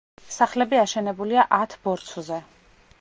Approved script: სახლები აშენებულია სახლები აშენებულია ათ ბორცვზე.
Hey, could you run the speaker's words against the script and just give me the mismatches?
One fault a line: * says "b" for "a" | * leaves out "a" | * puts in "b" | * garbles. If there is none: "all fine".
* leaves out "სახლები აშენებულია"